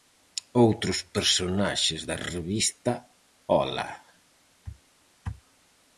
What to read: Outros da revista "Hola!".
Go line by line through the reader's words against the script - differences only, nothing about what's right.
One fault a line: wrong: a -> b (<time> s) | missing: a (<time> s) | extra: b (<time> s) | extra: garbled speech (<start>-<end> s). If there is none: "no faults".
extra: personaxes (1.1 s)